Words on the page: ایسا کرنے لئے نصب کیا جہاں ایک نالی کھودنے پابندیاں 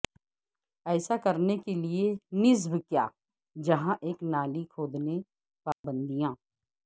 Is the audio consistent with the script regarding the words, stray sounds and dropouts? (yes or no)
no